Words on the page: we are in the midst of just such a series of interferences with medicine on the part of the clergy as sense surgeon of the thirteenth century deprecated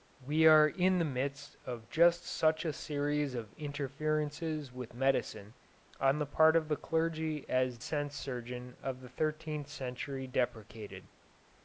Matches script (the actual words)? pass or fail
pass